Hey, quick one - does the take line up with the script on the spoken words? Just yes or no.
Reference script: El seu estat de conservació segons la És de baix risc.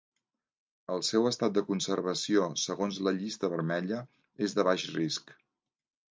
no